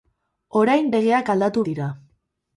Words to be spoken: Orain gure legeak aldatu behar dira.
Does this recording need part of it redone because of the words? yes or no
yes